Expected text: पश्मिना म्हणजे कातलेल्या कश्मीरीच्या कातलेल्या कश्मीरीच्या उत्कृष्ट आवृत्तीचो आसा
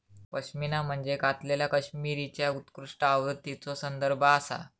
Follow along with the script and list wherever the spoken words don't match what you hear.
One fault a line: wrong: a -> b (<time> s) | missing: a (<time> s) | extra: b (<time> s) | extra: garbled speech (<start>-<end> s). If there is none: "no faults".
missing: कातलेल्या कश्मीरीच्या (2.5 s)
extra: संदर्भ (3.7 s)